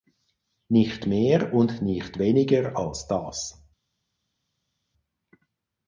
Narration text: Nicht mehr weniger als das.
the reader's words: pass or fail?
fail